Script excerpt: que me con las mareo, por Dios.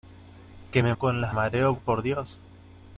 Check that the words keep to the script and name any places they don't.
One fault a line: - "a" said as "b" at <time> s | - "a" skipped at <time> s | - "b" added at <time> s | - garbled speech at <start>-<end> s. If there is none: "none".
none